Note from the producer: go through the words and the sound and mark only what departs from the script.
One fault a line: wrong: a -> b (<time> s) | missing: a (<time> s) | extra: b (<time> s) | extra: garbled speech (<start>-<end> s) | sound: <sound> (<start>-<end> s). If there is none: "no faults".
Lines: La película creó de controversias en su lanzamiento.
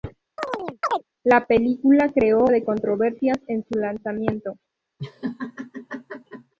sound: chirp (0.4-1.0 s)
sound: laugh (5.0-6.5 s)